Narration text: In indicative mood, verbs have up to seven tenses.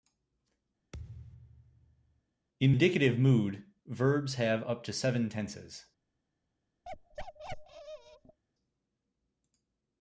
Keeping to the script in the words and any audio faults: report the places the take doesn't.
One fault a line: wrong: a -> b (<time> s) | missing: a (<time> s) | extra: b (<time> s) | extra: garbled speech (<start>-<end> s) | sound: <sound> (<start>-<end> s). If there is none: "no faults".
sound: thud (0.9-2.2 s)
sound: bark (6.8-8.4 s)